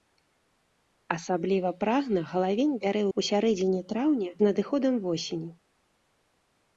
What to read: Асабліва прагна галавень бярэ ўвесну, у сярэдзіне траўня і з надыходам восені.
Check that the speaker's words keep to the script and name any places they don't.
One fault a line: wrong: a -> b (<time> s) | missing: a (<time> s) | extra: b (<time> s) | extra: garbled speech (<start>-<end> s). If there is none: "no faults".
missing: ўвесну (3.0 s)
missing: і (4.3 s)